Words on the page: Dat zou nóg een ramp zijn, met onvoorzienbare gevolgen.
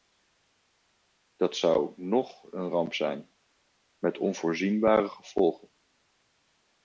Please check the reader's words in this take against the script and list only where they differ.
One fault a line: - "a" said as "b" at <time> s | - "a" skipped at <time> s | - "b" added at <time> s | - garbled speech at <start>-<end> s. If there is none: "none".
none